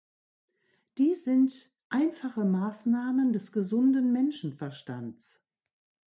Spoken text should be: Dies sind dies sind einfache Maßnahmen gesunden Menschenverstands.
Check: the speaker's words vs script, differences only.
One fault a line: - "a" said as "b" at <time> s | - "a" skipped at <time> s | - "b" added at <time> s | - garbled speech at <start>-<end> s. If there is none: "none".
- "dies sind" skipped at 1.8 s
- "des" added at 3.3 s